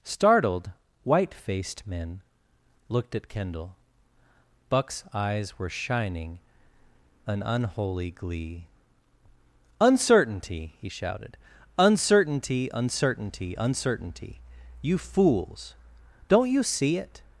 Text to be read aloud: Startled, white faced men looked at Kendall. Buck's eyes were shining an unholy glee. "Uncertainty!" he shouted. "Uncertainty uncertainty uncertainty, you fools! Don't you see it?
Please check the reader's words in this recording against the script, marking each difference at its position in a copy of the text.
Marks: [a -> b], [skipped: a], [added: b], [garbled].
Startled, white faced men looked at Kendall. Buck's eyes were shining an unholy glee. "Uncertainty!" he shouted. "Uncertainty uncertainty uncertainty, you fools! Don't you see it?